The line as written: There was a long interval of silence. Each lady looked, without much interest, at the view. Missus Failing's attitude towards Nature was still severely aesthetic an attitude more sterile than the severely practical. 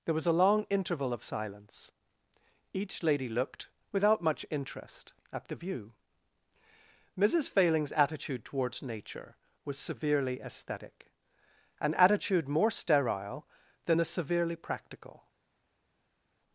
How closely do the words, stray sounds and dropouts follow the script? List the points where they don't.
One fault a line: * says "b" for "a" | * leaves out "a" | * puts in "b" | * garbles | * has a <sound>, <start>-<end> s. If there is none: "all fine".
* leaves out "still"